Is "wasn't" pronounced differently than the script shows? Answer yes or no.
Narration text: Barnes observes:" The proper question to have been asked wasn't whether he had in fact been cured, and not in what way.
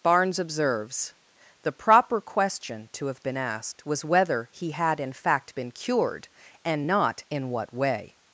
yes